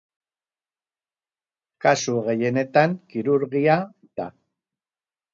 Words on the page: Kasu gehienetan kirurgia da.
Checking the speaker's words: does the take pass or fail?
pass